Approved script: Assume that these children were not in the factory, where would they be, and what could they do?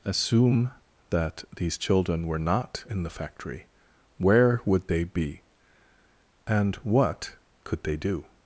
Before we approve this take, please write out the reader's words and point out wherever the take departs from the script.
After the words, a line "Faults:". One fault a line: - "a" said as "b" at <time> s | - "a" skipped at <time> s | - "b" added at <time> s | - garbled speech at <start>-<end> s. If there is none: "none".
Assume that these children were not in the factory, where would they be, and what could they do?
Faults:
none